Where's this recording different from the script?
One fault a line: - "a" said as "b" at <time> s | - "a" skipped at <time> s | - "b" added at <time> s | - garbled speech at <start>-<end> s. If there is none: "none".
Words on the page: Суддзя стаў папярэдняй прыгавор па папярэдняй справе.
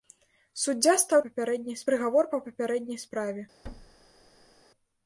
none